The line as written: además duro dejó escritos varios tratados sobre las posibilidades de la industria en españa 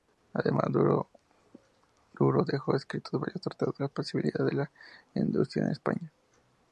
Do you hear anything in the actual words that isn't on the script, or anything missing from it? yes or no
yes